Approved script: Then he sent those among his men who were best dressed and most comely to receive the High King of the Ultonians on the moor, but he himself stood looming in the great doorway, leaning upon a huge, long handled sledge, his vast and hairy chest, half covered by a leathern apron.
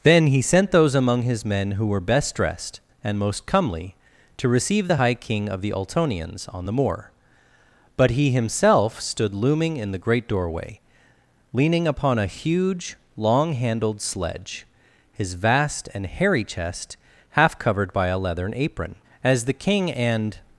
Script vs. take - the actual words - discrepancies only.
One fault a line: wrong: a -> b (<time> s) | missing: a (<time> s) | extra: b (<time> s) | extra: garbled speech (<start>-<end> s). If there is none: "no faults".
extra: As the King and (19.2 s)